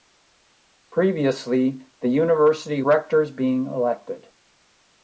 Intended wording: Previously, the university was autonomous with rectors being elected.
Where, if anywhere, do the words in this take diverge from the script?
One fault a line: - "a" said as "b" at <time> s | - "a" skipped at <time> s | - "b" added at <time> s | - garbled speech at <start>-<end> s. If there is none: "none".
- "was autonomous with" skipped at 2.8 s